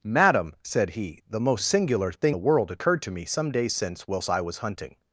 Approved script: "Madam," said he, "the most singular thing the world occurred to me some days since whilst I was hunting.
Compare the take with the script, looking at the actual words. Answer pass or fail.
pass